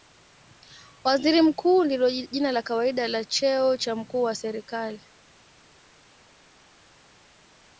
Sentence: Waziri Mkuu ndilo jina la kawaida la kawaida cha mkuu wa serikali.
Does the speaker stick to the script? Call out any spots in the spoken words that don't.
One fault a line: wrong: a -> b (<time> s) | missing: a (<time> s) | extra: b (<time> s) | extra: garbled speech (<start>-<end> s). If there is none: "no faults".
wrong: kawaida -> cheo (3.2 s)